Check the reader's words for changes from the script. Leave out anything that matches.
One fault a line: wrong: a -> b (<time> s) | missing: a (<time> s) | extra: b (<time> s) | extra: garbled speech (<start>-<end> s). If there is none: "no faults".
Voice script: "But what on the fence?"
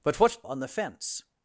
no faults